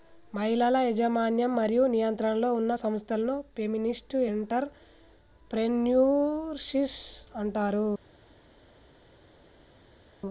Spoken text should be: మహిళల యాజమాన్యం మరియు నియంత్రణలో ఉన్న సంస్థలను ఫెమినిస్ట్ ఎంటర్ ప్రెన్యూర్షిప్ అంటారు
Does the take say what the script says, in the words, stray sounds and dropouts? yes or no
yes